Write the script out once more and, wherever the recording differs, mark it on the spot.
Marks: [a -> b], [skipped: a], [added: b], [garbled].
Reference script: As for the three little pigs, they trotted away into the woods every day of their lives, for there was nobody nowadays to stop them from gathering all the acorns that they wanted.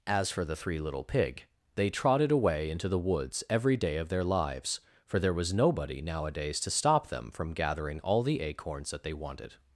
As for the three little [pigs, -> pig] they trotted away into the woods every day of their lives, for there was nobody nowadays to stop them from gathering all the acorns that they wanted.